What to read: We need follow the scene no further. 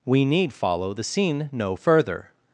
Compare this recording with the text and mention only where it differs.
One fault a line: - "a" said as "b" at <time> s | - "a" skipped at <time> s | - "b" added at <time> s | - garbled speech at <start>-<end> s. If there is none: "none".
none